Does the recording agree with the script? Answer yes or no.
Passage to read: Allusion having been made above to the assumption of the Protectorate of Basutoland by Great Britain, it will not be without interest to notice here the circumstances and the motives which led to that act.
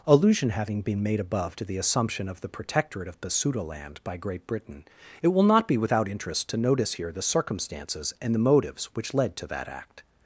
yes